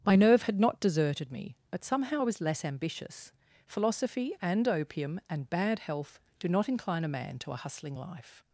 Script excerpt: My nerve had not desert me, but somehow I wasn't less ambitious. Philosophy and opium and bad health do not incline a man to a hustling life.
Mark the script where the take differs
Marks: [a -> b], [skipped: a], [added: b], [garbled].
My nerve had not [desert -> deserted] me, but somehow I [wasn't -> was] less ambitious. Philosophy and opium and bad health do not incline a man to a hustling life.